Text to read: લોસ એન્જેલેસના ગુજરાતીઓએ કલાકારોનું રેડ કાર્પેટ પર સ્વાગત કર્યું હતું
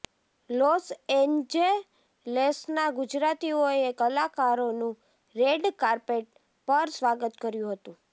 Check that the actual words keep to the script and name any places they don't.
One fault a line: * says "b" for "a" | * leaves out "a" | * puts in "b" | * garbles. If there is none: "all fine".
all fine